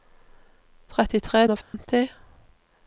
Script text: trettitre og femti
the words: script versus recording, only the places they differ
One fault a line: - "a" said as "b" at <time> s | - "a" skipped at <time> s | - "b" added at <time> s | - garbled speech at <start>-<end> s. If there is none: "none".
none